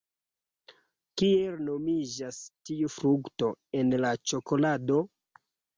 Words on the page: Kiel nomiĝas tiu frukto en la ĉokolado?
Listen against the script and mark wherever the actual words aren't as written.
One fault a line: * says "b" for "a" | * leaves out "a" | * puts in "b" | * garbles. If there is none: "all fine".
all fine